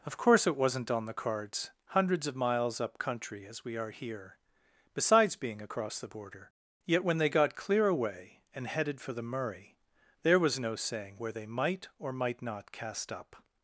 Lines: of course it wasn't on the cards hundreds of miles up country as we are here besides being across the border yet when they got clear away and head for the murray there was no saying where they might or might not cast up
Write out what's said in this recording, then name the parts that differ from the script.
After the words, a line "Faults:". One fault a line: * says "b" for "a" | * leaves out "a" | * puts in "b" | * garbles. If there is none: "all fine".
of course it wasn't on the cards hundreds of miles up country as we are here besides being across the border yet when they got clear away and headed for the murray there was no saying where they might or might not cast up
Faults:
* says "headed" for "head"